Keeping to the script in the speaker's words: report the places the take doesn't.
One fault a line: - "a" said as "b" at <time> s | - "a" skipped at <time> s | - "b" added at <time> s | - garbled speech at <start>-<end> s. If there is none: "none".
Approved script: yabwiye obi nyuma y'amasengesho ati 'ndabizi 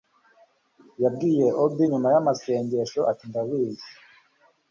none